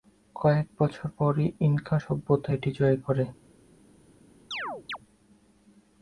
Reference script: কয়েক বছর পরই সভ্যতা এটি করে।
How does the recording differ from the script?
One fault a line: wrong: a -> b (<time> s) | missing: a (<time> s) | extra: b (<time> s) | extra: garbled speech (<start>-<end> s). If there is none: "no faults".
extra: ইনকা (1.6 s)
extra: জয় (2.8 s)